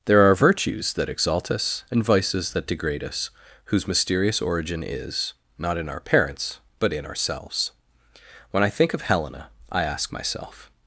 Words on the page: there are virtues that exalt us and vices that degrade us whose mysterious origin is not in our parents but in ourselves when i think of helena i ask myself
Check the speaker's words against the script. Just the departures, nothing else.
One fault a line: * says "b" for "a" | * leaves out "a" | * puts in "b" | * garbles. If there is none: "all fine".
all fine